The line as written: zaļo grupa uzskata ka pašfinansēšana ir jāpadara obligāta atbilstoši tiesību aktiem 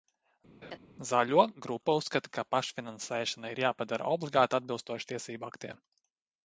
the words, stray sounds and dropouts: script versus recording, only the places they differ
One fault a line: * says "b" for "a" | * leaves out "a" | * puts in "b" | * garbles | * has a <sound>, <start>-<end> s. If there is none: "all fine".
* has a laugh, 0.6-0.8 s